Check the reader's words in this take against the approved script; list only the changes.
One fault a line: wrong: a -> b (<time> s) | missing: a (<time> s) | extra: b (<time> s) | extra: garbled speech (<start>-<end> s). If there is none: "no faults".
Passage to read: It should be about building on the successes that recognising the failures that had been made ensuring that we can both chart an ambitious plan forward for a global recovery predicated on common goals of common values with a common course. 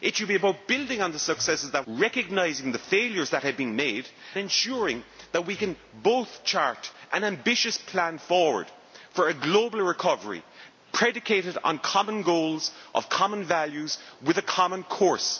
no faults